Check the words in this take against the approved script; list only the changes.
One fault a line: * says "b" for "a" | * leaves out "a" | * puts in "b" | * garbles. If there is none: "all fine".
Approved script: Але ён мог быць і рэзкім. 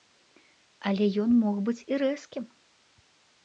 all fine